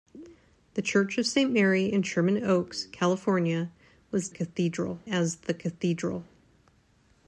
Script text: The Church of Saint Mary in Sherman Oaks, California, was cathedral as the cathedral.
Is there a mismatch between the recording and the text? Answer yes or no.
no